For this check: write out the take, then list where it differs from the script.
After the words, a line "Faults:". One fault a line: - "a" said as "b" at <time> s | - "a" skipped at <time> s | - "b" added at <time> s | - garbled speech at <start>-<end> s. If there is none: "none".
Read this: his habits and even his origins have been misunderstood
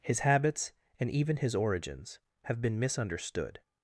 his habits and even his origins have been misunderstood
Faults:
none